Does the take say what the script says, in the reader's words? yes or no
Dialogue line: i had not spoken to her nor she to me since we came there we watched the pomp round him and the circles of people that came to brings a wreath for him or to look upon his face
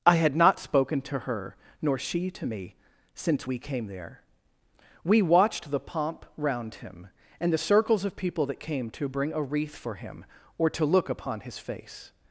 no